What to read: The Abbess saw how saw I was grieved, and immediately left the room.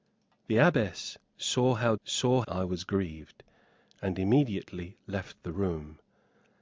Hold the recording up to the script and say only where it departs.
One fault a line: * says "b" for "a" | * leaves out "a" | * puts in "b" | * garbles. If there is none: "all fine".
all fine